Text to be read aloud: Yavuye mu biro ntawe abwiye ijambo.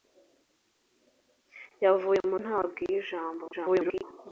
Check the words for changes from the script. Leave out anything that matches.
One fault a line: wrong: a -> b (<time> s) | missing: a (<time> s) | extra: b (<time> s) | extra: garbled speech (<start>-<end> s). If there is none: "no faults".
missing: biro (2.4 s)
extra: garbled speech (3.5-4.0 s)